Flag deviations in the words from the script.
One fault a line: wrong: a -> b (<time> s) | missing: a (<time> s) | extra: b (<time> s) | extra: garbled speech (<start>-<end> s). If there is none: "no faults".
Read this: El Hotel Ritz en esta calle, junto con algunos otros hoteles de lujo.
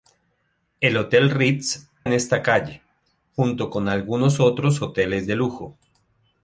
no faults